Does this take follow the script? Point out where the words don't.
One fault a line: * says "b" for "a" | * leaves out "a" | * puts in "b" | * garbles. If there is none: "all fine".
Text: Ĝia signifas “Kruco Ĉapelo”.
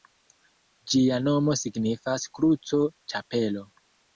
* puts in "nomo"